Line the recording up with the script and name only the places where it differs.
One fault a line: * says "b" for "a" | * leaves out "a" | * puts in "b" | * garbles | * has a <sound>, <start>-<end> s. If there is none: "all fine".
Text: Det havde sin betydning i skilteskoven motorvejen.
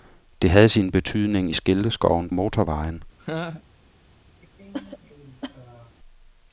* has a laugh, 3.2-3.6 s
* has a cough, 4.4-6.0 s